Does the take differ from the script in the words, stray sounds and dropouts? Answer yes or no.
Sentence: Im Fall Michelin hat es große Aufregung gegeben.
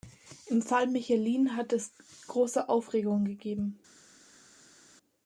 no